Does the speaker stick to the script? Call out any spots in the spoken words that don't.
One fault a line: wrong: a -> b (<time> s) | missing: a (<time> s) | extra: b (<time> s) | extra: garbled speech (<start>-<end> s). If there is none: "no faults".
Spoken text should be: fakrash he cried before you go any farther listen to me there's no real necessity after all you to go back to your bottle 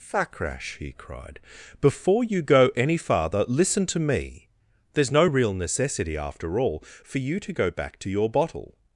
extra: for (7.0 s)